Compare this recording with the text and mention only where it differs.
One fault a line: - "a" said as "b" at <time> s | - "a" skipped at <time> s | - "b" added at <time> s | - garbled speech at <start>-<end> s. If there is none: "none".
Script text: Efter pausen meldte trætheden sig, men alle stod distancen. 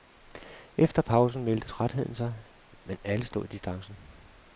none